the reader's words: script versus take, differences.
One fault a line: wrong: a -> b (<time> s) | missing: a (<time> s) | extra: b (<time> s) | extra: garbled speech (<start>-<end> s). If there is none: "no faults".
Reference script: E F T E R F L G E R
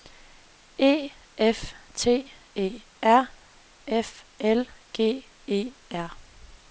no faults